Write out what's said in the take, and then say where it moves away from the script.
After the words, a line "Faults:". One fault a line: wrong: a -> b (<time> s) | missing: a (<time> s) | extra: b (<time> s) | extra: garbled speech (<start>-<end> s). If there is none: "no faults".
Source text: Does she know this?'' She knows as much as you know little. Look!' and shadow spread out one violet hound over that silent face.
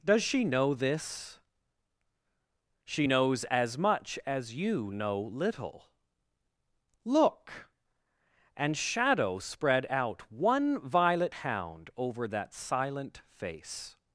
Does she know this?'' She knows as much as you know little. Look!' and shadow spread out one violet hound over that silent face.
Faults:
no faults